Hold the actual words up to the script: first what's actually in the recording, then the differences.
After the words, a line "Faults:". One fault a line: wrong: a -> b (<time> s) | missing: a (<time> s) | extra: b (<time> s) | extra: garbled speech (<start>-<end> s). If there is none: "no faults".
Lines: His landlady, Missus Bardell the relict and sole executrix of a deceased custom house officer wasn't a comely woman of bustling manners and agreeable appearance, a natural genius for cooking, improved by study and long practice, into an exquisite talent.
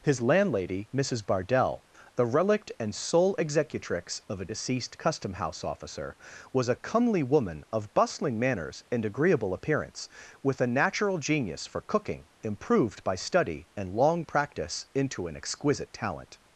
His landlady, Missus Bardell the relict and sole executrix of a deceased custom house officer was a comely woman of bustling manners and agreeable appearance, with a natural genius for cooking, improved by study and long practice, into an exquisite talent.
Faults:
wrong: wasn't -> was (6.5 s)
extra: with (10.4 s)